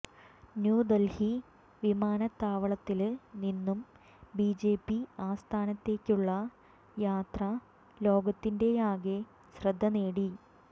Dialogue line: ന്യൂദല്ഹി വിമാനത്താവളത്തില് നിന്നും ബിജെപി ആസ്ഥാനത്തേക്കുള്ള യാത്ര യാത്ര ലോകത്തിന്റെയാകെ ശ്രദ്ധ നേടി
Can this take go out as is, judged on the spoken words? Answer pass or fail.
fail